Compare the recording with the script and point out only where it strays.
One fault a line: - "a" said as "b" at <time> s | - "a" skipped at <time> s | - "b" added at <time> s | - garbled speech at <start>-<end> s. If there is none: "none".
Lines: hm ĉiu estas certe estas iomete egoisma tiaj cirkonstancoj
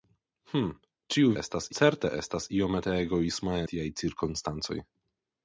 none